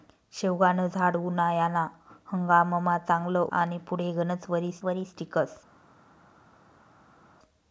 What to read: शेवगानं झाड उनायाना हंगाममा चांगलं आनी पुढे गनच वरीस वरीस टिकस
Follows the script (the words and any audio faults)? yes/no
yes